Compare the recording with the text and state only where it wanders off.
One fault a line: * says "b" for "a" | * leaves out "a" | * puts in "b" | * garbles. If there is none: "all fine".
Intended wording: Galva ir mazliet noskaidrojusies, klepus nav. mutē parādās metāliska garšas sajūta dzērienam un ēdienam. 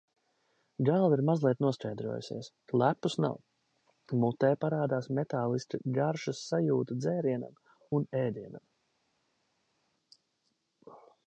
all fine